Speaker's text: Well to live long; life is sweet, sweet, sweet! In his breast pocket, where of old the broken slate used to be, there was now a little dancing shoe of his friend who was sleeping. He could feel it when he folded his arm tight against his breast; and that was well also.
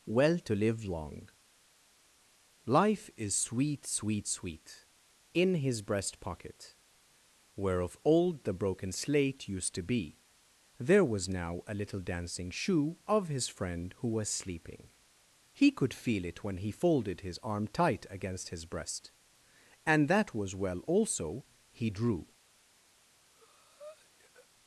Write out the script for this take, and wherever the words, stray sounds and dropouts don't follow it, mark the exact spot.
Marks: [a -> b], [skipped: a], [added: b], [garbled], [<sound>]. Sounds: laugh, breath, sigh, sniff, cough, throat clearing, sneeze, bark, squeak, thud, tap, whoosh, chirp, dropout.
Well to live long; life is sweet, sweet, sweet! In his breast pocket, where of old the broken slate used to be, there was now a little dancing shoe of his friend who was sleeping. He could feel it when he folded his arm tight against his breast; and that was well also. [added: He drew] [breath]